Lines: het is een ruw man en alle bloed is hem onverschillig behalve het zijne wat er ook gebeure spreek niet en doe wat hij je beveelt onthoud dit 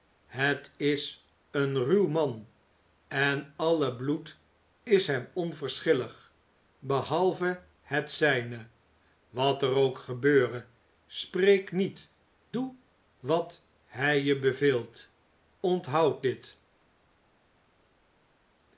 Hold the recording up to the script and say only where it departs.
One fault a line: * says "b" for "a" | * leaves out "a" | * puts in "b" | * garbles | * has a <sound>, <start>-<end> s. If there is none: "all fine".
* leaves out "en"